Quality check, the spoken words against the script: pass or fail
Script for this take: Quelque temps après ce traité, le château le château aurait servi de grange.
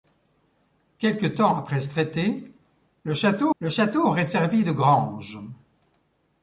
pass